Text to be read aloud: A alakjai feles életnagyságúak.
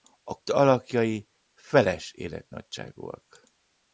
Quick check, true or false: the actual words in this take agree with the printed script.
true